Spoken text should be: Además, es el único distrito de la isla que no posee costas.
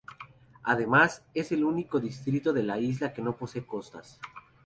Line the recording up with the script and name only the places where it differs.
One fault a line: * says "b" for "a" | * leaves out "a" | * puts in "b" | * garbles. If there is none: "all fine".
all fine